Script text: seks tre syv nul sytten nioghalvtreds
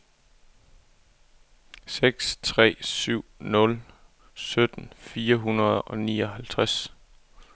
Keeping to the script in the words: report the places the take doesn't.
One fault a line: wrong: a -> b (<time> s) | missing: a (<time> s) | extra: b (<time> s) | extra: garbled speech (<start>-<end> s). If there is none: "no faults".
extra: fire hundrede og (5.0 s)